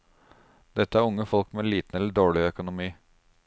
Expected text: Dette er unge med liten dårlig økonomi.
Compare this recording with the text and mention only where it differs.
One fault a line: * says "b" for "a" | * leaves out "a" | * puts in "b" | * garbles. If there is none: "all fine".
* puts in "folk"
* puts in "eller"